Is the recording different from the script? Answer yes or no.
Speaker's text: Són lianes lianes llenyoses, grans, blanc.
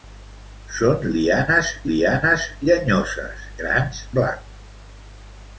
no